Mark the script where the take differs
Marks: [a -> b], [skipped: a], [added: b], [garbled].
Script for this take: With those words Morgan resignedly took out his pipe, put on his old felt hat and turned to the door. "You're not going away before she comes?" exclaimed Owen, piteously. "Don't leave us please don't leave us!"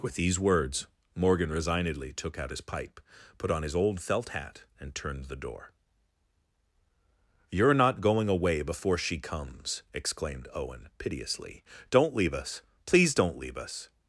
With [those -> these] words Morgan resignedly took out his pipe, put on his old felt hat and turned [skipped: to] the door. "You're not going away before she comes?" exclaimed Owen, piteously. "Don't leave us please don't leave us!"